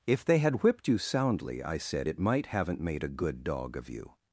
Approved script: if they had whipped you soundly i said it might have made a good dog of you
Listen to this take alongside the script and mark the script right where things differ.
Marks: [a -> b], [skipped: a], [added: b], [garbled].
if they had whipped you soundly i said it might [have -> haven't] made a good dog of you